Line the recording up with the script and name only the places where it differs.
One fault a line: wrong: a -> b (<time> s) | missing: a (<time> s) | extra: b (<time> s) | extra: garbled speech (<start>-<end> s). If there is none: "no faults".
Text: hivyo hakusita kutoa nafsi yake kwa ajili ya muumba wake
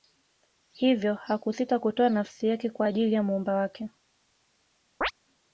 no faults